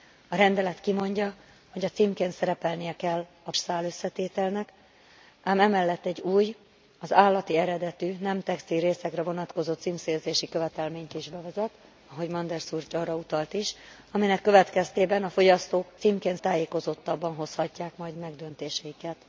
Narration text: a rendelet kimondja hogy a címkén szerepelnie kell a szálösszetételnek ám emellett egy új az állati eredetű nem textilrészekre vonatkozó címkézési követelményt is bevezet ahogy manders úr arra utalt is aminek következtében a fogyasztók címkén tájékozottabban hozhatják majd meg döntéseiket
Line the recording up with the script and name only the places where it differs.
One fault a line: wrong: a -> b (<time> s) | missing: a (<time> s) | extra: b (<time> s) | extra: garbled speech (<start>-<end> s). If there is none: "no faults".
no faults